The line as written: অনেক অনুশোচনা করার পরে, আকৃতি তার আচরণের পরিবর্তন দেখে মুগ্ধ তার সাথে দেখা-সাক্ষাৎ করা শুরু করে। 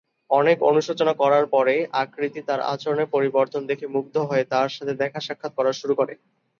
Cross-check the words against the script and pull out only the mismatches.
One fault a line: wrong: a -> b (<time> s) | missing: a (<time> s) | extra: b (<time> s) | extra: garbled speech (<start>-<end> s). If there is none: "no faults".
extra: হয়ে (4.3 s)